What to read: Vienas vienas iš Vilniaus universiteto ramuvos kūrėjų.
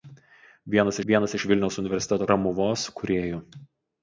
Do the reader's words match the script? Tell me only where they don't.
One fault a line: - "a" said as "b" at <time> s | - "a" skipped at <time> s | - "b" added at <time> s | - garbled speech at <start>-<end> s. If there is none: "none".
none